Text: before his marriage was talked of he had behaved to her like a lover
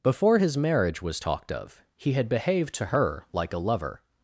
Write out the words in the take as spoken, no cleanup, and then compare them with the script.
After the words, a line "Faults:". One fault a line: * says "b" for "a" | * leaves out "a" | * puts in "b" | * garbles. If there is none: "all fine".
before his marriage was talked of he had behaved to her like a lover
Faults:
all fine